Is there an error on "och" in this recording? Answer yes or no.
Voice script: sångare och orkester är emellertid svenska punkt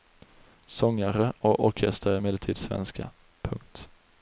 no